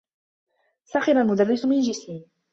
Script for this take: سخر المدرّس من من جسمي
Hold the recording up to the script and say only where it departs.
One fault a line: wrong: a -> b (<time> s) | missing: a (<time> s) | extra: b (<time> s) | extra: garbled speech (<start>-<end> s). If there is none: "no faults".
missing: من (1.8 s)